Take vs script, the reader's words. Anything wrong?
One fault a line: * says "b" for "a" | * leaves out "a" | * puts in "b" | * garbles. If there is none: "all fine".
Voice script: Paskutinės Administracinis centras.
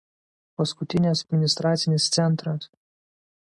all fine